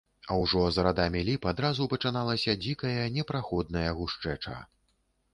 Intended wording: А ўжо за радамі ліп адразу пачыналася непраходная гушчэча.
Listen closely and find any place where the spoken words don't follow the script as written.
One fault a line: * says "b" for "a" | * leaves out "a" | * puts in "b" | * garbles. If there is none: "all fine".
* puts in "дзікая"